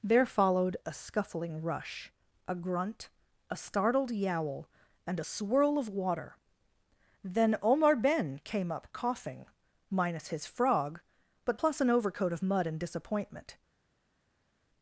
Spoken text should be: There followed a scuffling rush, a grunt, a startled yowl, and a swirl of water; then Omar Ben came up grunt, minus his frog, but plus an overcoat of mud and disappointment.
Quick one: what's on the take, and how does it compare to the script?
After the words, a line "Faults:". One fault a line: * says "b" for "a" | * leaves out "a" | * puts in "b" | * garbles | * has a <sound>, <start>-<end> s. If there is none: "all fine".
There followed a scuffling rush, a grunt, a startled yowl, and a swirl of water; then Omar Ben came up coughing, minus his frog, but plus an overcoat of mud and disappointment.
Faults:
* says "coughing" for "grunt"